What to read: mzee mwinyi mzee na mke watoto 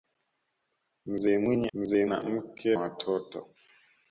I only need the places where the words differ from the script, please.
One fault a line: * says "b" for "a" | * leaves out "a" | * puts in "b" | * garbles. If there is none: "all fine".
all fine